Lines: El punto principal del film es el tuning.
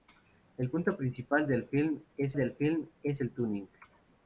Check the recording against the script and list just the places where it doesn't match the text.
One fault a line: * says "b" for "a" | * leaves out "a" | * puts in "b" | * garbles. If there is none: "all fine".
* puts in "del film es"